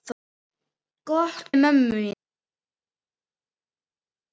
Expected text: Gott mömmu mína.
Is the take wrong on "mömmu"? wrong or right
right